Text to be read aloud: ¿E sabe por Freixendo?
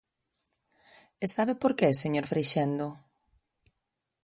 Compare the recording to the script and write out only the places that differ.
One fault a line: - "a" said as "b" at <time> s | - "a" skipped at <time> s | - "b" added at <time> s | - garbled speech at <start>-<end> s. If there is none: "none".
- "que señor" added at 1.8 s